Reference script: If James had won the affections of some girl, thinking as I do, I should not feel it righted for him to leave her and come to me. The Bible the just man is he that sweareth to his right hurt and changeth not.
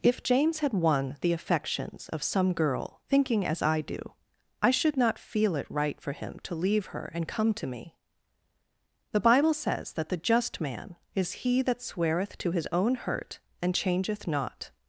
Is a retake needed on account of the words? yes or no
yes